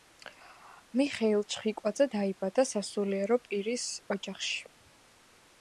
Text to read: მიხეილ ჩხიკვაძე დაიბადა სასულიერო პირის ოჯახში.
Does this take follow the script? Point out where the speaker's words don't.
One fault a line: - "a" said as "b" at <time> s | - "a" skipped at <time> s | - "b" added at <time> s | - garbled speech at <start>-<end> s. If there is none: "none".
none